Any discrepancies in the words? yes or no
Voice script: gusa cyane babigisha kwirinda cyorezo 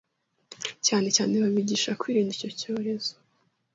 yes